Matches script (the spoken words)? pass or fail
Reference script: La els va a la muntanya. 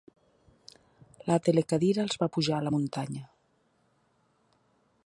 fail